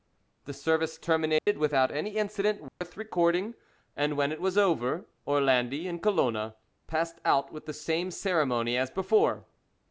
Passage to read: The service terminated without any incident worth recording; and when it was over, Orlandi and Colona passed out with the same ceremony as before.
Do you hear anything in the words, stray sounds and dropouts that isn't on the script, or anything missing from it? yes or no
yes